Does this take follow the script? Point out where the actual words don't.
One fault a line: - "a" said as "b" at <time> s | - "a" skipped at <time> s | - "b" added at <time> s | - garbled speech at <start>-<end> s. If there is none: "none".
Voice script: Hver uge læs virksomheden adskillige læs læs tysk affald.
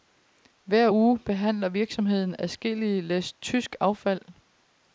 - "læs" said as "behandler" at 1.2 s
- "læs" skipped at 3.3 s